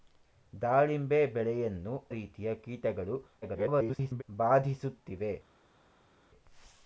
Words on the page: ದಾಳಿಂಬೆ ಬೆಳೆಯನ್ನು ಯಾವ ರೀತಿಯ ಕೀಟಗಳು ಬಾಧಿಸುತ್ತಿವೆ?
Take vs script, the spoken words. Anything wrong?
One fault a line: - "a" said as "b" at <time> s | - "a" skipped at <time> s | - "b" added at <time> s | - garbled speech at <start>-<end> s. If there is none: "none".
- "ಯಾವ" skipped at 1.9 s
- garbled speech at 3.4-4.2 s